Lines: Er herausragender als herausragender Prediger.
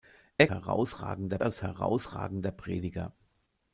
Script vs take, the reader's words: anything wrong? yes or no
no